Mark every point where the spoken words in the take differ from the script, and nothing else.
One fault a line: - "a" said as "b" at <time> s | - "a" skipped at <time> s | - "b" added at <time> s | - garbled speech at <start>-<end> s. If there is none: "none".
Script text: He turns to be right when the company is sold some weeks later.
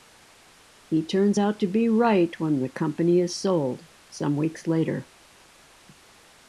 - "out" added at 1.4 s